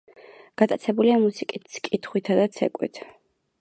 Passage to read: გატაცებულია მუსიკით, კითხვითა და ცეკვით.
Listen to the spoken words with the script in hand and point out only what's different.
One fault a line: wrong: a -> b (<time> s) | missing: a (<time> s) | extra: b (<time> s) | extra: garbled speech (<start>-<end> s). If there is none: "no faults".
no faults